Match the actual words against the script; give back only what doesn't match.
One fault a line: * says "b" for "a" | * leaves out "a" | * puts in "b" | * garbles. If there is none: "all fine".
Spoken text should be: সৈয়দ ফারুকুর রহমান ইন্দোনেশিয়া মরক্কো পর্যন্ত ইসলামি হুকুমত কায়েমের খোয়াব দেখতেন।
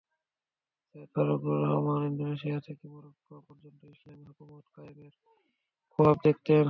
* puts in "থেকে"